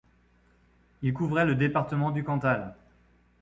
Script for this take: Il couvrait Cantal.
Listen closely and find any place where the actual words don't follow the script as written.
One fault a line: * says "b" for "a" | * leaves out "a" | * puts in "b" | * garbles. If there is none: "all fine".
* puts in "le département du"